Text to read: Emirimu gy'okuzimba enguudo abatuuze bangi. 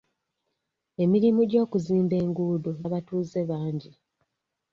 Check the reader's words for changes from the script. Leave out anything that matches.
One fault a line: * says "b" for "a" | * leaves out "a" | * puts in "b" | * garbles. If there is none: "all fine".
all fine